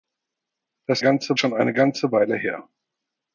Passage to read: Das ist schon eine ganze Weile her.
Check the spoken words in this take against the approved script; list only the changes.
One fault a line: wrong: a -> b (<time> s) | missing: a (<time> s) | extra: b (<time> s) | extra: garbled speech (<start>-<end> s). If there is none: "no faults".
wrong: ist -> ganze (1.0 s)